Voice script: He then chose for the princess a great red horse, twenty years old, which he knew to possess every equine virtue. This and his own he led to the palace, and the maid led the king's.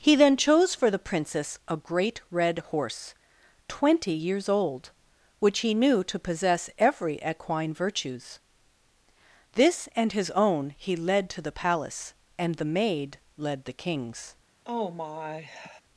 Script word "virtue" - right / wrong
wrong